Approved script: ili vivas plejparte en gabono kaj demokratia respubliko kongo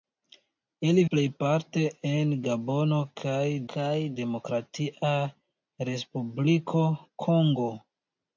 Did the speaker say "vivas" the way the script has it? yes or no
no